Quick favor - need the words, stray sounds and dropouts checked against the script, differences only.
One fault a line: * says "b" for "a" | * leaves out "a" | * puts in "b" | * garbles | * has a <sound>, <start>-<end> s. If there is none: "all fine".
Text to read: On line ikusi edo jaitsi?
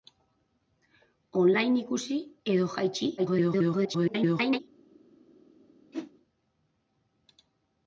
* garbles
* has a whoosh, 5.9-6.1 s